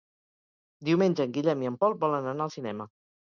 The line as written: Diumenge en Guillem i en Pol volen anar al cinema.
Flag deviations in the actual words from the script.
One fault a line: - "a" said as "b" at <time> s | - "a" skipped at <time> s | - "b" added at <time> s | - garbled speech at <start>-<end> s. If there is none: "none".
none